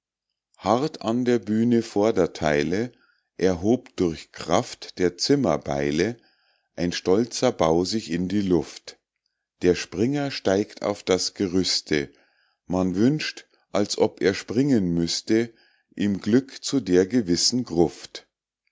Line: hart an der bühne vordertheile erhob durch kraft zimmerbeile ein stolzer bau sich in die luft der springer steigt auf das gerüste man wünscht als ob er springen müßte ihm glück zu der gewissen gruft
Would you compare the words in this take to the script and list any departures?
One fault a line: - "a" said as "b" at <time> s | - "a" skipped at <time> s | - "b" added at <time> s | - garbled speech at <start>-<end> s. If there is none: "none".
- "der" added at 5.0 s